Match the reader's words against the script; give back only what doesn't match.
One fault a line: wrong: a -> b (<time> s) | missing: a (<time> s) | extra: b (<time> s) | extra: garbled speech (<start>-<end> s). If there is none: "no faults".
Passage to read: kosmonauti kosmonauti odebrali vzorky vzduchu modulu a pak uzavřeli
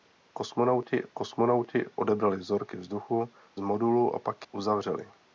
no faults